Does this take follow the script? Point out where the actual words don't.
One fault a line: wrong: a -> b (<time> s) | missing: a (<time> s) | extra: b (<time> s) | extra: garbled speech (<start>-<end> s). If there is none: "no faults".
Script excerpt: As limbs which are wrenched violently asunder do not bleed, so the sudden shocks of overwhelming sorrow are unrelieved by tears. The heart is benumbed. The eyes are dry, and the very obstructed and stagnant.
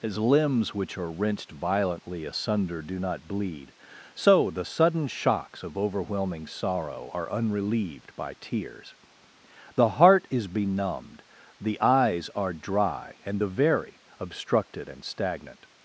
no faults